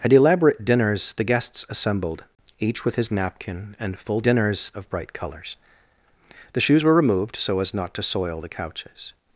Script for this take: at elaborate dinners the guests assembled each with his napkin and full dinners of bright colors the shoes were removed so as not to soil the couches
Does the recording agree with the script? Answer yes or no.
yes